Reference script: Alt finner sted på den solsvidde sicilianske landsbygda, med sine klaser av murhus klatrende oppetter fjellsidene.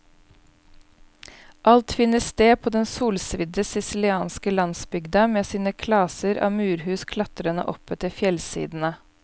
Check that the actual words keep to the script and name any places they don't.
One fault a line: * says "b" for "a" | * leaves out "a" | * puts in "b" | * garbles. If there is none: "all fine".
all fine